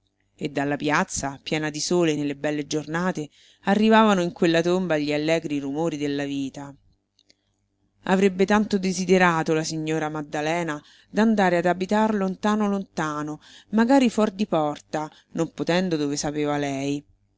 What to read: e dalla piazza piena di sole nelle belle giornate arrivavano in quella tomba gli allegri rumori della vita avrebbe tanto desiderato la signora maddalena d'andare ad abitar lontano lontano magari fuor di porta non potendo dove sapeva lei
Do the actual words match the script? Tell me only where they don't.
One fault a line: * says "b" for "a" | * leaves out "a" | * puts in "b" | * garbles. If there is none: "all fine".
all fine